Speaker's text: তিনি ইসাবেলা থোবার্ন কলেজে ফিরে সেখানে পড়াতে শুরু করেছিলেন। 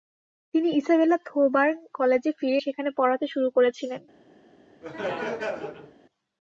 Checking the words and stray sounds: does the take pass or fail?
fail